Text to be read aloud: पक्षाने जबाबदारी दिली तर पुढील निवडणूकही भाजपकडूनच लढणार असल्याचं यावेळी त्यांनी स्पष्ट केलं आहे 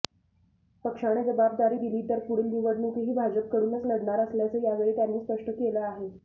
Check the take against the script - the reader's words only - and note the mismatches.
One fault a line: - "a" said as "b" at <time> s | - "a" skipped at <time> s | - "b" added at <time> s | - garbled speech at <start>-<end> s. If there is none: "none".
none